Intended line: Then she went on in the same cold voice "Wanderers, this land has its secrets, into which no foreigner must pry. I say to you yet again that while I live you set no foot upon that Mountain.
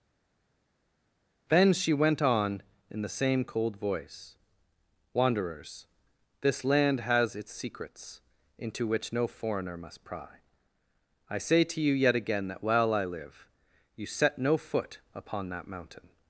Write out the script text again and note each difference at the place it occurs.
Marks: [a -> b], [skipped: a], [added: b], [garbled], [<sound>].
Then she went on in the same cold voice "Wanderers, this land has its secrets, into which no foreigner must pry. I say to you yet again that while I live you set no foot upon that Mountain.